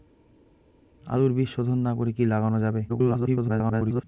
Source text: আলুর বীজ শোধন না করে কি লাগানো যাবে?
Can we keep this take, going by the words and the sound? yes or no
no